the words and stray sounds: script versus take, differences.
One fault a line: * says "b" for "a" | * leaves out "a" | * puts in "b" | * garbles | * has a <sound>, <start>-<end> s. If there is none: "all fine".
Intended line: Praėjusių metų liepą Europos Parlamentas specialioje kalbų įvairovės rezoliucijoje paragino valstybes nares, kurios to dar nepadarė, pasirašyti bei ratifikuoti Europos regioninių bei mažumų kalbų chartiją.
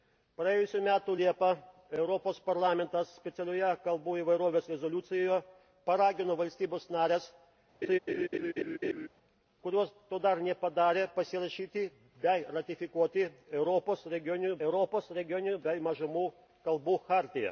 * has a laugh, 7.8-9.1 s
* puts in "Europos regioninių"